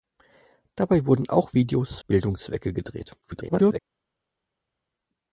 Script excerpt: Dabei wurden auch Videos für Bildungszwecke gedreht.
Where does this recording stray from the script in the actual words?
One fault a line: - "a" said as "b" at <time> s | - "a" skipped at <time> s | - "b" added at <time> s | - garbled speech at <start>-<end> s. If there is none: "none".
- "für" skipped at 2.0 s
- garbled speech at 3.2-3.8 s